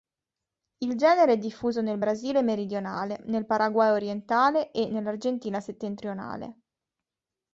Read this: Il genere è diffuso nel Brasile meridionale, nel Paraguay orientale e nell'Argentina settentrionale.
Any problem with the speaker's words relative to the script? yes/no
no